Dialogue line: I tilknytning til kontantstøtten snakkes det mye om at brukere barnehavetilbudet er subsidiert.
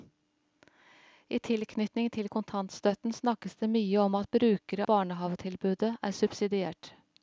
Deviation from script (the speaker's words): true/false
false